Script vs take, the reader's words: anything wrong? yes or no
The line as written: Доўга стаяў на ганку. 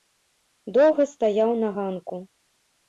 no